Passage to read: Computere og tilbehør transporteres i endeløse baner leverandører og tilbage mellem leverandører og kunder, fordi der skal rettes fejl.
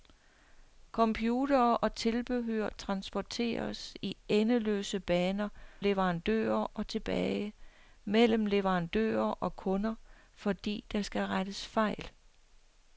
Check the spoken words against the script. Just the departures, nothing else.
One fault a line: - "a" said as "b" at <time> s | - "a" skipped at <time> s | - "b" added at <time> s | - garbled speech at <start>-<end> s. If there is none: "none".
none